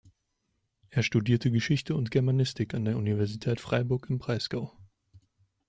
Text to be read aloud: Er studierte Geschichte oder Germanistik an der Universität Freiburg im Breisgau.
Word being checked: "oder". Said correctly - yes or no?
no